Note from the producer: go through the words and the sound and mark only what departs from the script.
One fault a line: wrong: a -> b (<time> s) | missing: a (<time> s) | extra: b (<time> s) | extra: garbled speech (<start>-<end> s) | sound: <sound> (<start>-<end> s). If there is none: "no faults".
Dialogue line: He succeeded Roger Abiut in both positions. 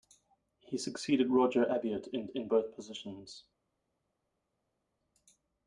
extra: in (2.3 s)